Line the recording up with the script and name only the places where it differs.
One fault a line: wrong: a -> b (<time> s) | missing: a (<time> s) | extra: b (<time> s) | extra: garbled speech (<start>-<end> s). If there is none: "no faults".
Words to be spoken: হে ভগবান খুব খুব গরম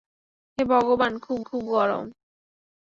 no faults